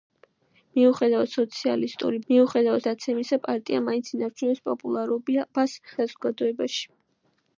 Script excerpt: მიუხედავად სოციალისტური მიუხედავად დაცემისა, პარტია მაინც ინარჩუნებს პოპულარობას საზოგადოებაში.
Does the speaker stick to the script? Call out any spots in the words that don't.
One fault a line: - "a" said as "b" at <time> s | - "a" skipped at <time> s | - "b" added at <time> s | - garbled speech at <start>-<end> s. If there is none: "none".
none